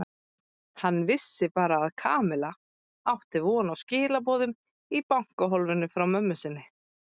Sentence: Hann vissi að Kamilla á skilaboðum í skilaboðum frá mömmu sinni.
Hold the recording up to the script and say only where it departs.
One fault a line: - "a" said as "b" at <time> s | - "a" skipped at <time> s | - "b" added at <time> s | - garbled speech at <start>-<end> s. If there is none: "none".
- "bara" added at 1.6 s
- "átti von" added at 3.1 s
- "skilaboðum" said as "bankahólfinu" at 5.1 s